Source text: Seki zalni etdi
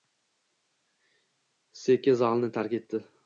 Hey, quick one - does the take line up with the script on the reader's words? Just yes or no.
no